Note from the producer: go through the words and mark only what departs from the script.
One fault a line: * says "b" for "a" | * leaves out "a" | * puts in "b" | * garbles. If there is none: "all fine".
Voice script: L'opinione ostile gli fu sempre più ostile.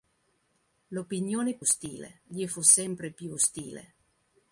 all fine